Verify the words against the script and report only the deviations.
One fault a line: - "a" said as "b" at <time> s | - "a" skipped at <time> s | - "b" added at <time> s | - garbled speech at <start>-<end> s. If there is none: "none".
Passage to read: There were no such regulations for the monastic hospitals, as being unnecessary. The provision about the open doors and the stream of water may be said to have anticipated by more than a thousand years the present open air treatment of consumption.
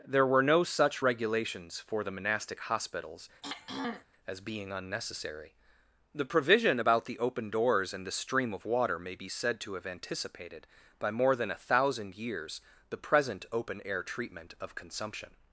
none